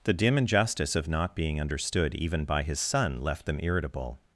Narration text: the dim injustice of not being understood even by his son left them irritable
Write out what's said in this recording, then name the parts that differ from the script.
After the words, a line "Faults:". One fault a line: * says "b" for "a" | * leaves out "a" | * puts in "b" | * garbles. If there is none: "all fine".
the dim injustice of not being understood even by his son left them irritable
Faults:
all fine